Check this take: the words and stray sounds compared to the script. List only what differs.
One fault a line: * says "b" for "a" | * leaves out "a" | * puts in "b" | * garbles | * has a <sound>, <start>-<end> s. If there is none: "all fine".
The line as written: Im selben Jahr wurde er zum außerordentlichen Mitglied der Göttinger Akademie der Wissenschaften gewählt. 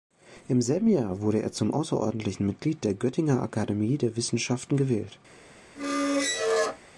* has a squeak, 5.8-6.8 s